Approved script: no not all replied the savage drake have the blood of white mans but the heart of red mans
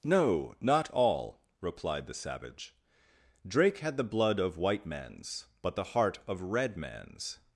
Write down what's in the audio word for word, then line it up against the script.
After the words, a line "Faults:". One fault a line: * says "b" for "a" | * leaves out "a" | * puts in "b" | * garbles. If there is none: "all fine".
no not all replied the savage drake had the blood of white mans but the heart of red mans
Faults:
* says "had" for "have"